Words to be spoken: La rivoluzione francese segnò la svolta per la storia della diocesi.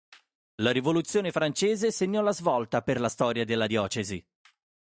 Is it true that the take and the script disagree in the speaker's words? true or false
false